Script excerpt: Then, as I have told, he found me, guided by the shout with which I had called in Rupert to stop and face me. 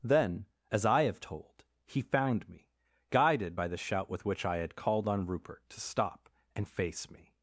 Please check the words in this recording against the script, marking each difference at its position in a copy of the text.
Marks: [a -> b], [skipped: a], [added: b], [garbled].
Then, as I have told, he found me, guided by the shout with which I had called [in -> on] Rupert to stop and face me.